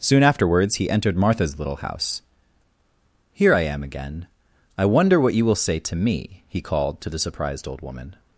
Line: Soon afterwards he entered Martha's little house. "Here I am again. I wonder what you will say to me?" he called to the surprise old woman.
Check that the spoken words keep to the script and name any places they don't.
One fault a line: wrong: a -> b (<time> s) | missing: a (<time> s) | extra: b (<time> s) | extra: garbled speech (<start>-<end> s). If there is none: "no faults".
wrong: surprise -> surprised (7.2 s)